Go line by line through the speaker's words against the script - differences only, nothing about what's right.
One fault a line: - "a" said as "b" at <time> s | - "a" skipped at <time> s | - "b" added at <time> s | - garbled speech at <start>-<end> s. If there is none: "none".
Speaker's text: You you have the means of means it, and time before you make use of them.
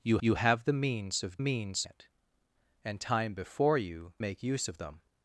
none